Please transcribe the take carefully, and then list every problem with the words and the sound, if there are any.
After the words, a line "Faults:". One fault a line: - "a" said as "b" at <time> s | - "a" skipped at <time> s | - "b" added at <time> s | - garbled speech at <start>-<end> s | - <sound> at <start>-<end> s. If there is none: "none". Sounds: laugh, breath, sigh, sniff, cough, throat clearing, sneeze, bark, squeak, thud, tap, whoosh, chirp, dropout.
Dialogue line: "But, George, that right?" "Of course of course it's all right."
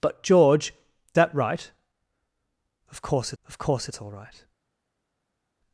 "But, George, that right?" "Of course of course it's all right."
Faults:
none